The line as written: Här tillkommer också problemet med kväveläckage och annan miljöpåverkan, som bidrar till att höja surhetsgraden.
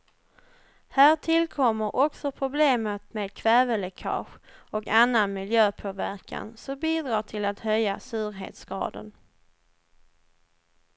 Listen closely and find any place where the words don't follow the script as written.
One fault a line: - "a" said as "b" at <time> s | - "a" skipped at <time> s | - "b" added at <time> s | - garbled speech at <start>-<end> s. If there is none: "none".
none